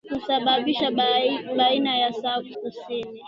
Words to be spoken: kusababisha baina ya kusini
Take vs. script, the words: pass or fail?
pass